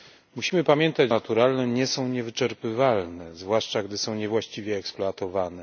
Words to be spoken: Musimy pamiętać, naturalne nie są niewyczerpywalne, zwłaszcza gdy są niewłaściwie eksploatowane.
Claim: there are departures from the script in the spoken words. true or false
false